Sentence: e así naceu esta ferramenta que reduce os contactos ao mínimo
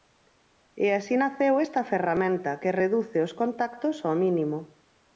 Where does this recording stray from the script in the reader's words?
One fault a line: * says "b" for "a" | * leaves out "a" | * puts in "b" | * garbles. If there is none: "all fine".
all fine